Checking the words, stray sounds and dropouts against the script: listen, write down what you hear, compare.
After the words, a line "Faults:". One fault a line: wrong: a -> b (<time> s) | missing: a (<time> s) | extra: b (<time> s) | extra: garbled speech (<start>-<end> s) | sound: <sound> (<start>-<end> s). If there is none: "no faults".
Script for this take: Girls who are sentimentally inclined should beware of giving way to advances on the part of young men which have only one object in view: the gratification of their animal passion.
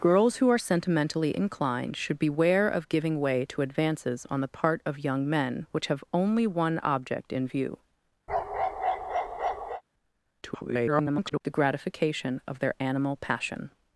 Girls who are sentimentally inclined should beware of giving way to advances on the part of young men which have only one object in view: [garbled] the gratification of their animal passion.
Faults:
sound: bark (8.3-9.8 s)
extra: garbled speech (10.4-11.4 s)